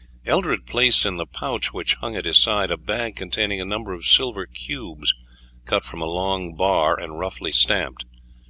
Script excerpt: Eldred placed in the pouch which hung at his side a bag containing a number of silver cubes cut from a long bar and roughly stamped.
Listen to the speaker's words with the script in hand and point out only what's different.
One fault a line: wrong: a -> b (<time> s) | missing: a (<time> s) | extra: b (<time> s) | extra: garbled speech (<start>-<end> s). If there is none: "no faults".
no faults